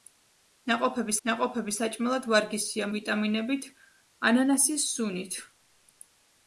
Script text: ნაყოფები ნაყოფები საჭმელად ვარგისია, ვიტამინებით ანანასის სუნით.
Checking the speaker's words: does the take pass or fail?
pass